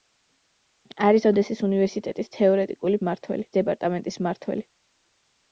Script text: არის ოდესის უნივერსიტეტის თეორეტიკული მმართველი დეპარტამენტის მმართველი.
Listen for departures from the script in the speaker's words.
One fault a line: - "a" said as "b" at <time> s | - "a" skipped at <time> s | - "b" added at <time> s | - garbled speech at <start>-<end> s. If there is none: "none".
none